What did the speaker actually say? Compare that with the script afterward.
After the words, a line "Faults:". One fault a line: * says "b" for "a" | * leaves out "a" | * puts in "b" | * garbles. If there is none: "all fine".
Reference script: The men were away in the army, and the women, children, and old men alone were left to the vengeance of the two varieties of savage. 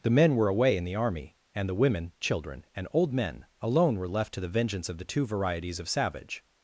The men were away in the army, and the women, children, and old men alone were left to the vengeance of the two varieties of savage.
Faults:
all fine